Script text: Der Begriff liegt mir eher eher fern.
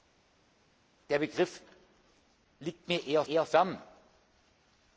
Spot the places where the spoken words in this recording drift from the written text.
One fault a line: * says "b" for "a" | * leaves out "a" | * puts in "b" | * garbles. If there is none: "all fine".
all fine